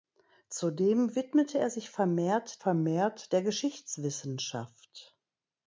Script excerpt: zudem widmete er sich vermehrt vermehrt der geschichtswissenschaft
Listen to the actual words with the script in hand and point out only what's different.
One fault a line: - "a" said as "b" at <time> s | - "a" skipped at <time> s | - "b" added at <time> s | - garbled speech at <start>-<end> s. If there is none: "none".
none